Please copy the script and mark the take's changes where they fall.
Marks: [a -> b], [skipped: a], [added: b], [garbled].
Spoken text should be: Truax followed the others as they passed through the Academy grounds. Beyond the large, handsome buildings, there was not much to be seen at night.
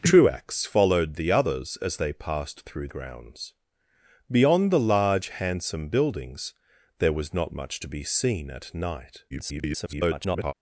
Truax followed the others as they passed through [skipped: the Academy] grounds. Beyond the large, handsome buildings, there was not much to be seen at night. [garbled]